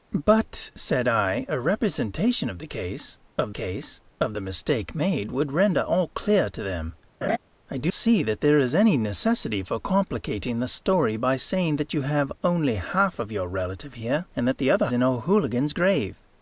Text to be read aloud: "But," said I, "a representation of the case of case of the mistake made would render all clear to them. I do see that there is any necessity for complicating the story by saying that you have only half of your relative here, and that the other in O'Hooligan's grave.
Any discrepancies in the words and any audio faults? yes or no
yes